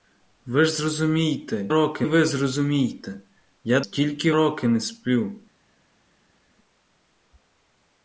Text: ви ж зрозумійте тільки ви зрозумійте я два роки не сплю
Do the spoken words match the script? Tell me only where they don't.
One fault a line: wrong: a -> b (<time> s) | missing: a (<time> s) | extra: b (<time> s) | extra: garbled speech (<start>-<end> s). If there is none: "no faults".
wrong: тільки -> роки (1.7 s)
wrong: два -> тільки (3.8 s)